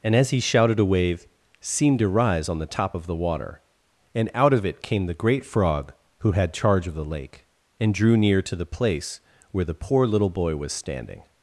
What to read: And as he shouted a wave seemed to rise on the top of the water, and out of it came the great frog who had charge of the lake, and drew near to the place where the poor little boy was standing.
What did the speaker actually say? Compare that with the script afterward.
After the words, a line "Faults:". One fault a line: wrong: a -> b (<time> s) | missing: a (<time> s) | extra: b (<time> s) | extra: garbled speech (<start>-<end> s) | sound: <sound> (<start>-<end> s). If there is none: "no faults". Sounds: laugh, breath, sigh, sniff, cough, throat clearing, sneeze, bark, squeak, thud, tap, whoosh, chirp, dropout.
And as he shouted a wave seemed to rise on the top of the water, and out of it came the great frog who had charge of the lake, and drew near to the place where the poor little boy was standing.
Faults:
no faults